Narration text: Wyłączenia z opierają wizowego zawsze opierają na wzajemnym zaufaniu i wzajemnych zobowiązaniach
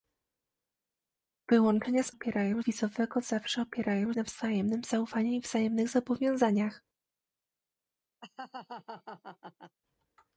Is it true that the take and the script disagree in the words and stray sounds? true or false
true